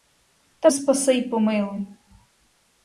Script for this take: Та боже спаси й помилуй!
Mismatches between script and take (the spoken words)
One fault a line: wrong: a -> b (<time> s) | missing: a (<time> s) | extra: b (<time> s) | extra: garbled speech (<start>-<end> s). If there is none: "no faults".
missing: боже (0.7 s)